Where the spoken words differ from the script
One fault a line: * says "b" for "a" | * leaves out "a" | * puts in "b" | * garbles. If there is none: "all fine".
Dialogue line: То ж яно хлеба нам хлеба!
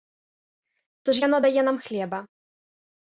* says "дае" for "хлеба"